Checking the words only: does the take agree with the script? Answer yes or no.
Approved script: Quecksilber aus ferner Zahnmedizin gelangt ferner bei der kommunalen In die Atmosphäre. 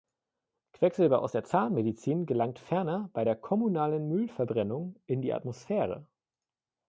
no